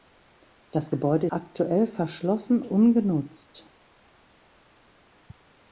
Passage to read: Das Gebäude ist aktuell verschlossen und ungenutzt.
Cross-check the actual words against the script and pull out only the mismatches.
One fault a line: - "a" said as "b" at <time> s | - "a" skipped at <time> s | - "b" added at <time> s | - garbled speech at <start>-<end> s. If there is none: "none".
- "ist" skipped at 1.3 s
- "und" skipped at 2.6 s